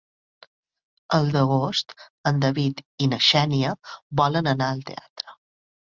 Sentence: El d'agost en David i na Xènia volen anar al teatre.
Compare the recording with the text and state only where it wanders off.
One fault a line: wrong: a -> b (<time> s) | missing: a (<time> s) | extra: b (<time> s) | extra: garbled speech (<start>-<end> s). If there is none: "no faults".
no faults